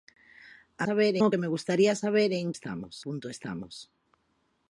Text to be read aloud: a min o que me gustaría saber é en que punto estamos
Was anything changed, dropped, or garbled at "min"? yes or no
yes